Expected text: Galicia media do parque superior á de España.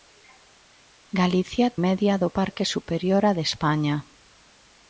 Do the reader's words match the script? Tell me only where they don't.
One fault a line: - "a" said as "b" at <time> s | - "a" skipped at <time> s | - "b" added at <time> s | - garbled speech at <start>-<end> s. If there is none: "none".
none